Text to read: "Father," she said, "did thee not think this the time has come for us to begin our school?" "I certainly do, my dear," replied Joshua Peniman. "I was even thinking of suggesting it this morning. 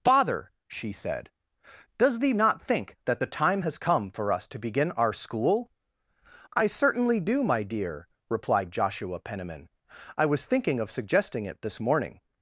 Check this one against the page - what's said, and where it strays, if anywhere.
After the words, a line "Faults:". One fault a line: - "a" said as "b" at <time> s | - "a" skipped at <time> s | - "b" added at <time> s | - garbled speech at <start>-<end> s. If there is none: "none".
"Father," she said, "does thee not think that the time has come for us to begin our school?" "I certainly do, my dear," replied Joshua Peniman. "I was thinking of suggesting it this morning.
Faults:
- "did" said as "does" at 2.0 s
- "this" said as "that" at 3.0 s
- "even" skipped at 10.5 s